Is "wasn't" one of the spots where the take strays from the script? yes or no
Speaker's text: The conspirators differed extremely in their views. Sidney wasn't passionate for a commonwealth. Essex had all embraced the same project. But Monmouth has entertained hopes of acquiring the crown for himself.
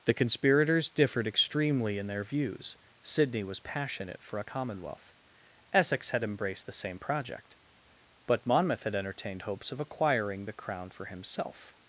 yes